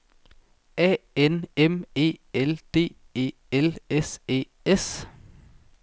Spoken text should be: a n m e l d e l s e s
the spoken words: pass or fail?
pass